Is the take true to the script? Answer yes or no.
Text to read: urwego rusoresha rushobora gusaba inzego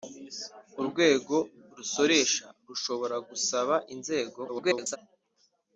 no